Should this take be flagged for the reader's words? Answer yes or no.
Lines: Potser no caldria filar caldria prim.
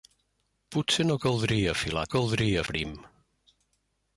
no